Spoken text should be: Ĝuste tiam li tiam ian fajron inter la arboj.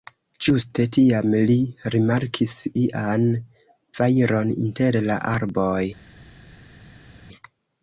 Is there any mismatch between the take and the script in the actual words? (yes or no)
yes